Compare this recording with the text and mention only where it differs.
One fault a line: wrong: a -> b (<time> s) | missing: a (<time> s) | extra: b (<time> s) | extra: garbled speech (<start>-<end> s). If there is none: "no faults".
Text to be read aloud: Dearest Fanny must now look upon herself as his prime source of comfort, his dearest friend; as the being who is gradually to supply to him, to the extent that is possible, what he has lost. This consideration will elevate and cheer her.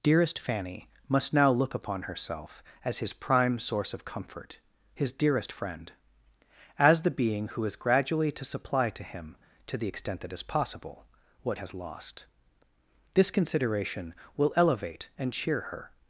missing: he (11.6 s)